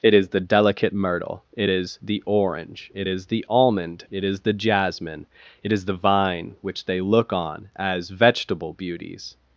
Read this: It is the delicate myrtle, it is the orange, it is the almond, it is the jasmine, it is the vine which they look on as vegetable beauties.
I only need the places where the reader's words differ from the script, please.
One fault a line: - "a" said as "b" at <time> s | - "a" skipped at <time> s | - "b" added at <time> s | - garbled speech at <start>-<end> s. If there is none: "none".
none